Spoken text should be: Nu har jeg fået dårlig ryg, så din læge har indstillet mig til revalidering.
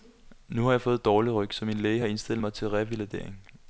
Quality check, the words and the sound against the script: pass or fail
fail